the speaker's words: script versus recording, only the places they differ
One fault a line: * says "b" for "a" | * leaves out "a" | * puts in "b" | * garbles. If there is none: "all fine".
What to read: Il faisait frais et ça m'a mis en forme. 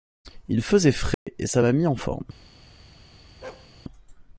all fine